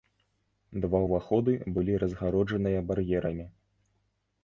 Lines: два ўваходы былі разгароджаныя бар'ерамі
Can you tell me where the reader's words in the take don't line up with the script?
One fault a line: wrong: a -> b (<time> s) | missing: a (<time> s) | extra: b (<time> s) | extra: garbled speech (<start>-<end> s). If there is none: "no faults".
no faults